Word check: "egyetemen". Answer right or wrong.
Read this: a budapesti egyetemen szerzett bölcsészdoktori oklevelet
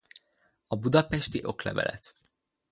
wrong